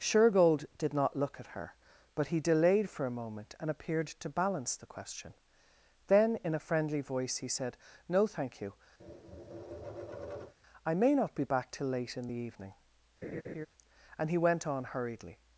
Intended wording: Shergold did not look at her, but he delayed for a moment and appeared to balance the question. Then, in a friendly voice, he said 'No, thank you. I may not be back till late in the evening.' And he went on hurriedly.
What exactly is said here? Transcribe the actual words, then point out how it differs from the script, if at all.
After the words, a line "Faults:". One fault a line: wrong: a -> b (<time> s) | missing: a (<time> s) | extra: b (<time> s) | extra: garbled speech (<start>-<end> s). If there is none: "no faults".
Shergold did not look at her, but he delayed for a moment and appeared to balance the question. Then, in a friendly voice, he said 'No, thank you. I may not be back till late in the evening.' And he went on hurriedly.
Faults:
no faults